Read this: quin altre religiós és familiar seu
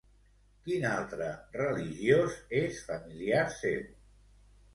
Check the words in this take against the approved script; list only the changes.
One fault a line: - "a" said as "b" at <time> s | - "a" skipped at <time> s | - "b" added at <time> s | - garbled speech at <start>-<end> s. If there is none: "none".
none